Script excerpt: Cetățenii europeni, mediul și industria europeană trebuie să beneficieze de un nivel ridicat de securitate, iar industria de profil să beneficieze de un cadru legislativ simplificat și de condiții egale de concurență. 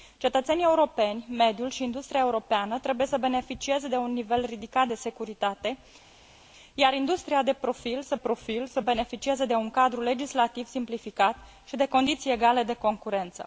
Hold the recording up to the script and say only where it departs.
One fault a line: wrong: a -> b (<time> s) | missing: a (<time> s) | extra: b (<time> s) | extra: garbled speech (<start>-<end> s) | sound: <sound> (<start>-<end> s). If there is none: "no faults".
extra: profil să (8.1 s)